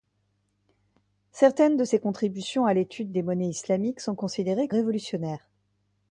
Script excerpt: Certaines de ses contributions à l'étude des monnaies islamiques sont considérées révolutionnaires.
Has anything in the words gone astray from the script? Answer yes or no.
no